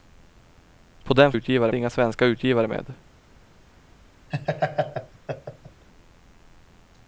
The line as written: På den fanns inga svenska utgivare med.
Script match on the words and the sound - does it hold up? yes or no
no